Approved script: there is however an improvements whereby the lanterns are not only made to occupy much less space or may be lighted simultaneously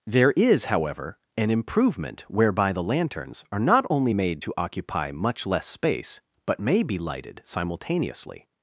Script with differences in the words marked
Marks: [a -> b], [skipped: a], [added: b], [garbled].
there is however an [improvements -> improvement] whereby the lanterns are not only made to occupy much less space [or -> but] may be lighted simultaneously